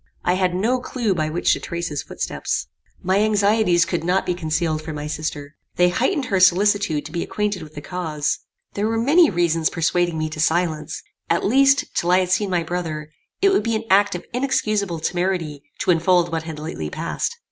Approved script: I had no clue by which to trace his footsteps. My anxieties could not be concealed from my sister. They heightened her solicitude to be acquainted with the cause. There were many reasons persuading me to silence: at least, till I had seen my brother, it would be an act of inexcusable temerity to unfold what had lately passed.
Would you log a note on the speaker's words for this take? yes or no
no